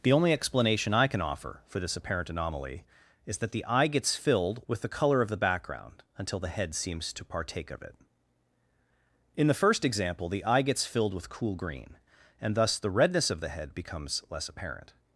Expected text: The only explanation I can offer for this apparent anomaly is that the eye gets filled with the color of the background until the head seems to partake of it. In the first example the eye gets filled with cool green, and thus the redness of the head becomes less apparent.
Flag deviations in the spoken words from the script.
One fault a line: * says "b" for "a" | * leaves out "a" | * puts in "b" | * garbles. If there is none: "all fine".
all fine